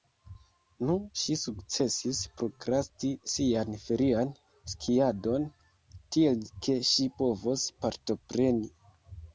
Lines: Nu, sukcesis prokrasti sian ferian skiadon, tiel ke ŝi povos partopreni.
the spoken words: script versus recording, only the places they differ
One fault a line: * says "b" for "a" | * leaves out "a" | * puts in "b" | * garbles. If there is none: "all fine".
* puts in "ŝi"